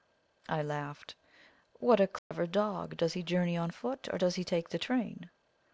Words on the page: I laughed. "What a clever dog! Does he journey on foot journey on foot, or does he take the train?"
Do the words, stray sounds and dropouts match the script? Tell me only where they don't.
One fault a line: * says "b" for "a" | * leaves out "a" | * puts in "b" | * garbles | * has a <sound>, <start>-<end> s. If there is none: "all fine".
* has a dropout, 2.2-2.3 s
* leaves out "journey on foot"